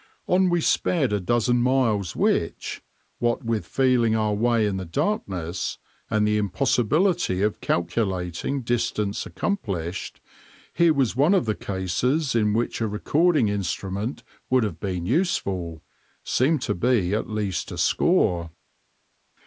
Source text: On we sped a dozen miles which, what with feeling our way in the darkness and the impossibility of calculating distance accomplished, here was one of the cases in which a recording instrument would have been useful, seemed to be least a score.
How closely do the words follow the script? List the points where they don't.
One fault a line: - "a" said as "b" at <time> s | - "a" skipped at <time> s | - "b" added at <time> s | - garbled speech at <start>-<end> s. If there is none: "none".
- "at" added at 17.1 s